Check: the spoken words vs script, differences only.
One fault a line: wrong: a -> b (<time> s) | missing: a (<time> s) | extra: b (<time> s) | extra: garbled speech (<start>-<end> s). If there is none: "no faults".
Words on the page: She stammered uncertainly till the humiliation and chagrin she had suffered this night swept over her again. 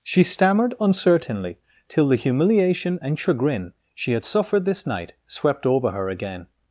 no faults